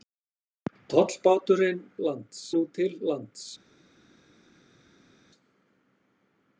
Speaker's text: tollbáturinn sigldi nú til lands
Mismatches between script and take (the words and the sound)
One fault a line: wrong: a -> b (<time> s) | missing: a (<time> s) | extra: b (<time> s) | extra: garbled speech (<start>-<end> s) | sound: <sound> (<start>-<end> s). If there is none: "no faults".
wrong: sigldi -> lands (2.1 s)